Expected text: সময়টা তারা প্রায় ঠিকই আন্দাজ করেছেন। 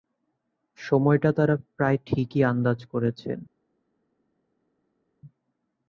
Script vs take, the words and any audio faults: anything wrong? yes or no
no